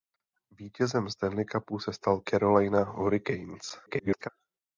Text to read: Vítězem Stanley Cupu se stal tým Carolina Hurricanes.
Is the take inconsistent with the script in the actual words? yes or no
yes